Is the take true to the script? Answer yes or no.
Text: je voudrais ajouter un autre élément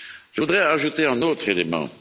yes